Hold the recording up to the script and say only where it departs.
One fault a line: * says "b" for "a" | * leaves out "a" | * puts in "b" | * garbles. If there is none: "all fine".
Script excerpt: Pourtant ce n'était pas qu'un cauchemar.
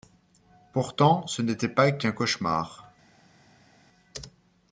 all fine